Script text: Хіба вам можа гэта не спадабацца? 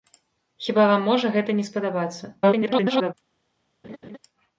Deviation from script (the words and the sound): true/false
true